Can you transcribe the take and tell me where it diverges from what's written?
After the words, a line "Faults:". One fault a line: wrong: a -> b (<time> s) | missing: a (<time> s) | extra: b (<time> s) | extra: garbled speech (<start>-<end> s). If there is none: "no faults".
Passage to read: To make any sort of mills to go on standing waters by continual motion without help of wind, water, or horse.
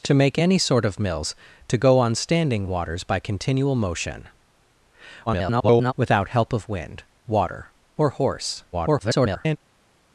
To make any sort of mills to go on standing waters by continual motion [garbled] without help of wind, water, or horse. [garbled]
Faults:
extra: garbled speech (5.3-5.9 s)
extra: garbled speech (8.7-9.6 s)